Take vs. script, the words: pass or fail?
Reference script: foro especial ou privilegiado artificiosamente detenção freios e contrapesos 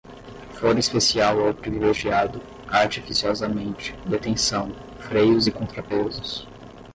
pass